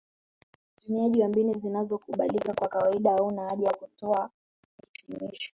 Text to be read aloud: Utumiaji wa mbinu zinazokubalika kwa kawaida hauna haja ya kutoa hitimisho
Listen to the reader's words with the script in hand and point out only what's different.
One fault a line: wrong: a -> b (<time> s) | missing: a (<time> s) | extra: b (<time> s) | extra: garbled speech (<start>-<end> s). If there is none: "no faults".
no faults